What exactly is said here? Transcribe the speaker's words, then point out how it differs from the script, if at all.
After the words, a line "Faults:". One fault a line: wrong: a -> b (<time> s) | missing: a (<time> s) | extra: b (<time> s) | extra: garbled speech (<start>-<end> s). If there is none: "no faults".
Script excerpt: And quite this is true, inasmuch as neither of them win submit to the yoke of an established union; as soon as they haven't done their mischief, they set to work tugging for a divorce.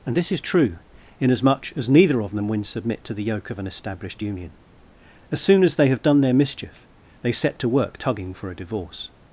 And this is true, inasmuch as neither of them win submit to the yoke of an established union; as soon as they have done their mischief, they set to work tugging for a divorce.
Faults:
missing: quite (0.2 s)
wrong: haven't -> have (5.9 s)